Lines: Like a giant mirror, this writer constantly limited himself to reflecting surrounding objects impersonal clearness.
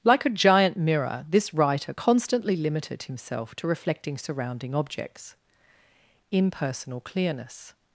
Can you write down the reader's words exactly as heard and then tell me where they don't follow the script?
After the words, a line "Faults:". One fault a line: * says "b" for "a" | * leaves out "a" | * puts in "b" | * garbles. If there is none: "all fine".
Like a giant mirror, this writer constantly limited himself to reflecting surrounding objects impersonal clearness.
Faults:
all fine